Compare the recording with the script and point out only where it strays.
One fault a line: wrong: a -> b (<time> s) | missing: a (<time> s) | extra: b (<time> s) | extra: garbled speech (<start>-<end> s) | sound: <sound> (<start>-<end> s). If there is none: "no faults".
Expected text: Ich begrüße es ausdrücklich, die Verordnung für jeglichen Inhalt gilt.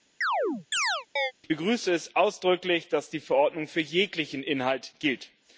sound: chirp (0.2-1.3 s)
extra: dass (2.9 s)